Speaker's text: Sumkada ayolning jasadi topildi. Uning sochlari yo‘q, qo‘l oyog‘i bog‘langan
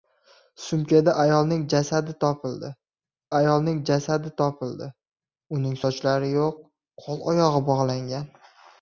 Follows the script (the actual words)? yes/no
no